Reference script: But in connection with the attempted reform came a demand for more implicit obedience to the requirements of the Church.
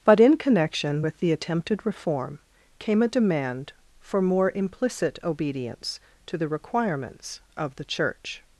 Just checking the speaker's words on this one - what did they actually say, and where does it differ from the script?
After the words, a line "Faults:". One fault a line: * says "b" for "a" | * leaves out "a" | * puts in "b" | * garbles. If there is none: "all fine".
But in connection with the attempted reform came a demand for more implicit obedience to the requirements of the Church.
Faults:
all fine